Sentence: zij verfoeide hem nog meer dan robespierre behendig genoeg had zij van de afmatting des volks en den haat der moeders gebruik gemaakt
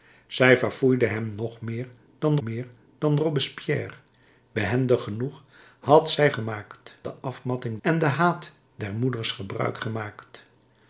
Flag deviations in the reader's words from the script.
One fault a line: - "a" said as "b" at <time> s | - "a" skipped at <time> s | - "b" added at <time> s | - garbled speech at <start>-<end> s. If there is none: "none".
- "meer dan" added at 2.4 s
- "van" said as "gemaakt" at 6.3 s
- "des volks" skipped at 7.8 s